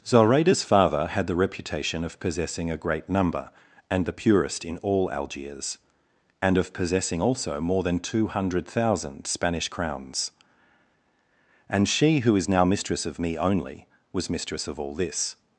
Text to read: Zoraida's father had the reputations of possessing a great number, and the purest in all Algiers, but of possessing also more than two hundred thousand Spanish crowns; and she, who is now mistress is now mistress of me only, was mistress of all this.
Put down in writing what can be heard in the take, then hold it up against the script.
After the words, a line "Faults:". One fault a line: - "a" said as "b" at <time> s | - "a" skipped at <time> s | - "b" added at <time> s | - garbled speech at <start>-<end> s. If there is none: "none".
Zoraida's father had the reputation of possessing a great number, and the purest in all Algiers, and of possessing also more than two hundred thousand Spanish crowns; and she, who is now mistress of me only, was mistress of all this.
Faults:
- "reputations" said as "reputation" at 1.4 s
- "but" said as "and" at 6.4 s
- "is now mistress" skipped at 13.0 s